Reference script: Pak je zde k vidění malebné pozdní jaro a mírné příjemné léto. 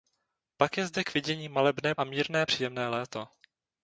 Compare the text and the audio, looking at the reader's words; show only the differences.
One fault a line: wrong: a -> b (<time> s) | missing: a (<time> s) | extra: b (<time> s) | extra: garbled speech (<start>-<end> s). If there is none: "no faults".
missing: pozdní jaro (1.9 s)